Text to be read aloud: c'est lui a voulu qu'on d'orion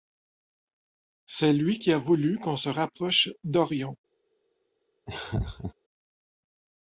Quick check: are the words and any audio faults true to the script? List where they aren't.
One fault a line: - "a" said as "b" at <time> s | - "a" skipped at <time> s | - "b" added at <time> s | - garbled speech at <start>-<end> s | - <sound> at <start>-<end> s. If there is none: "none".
- "qui" added at 1.8 s
- "se rapproche" added at 2.5 s
- laugh at 5.1-5.7 s